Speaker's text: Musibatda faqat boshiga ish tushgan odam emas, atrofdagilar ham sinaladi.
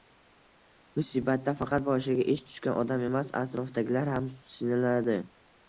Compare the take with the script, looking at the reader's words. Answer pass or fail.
pass